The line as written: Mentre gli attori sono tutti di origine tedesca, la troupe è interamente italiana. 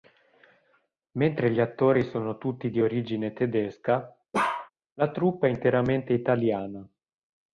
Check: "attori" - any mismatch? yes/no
no